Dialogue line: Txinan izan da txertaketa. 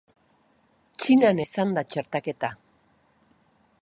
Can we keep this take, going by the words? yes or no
yes